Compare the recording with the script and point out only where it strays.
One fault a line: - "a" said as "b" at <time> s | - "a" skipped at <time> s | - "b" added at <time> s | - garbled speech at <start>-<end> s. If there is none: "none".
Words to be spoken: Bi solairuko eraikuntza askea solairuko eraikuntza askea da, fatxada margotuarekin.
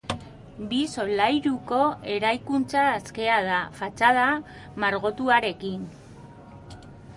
- "solairuko eraikuntza askea" skipped at 3.4 s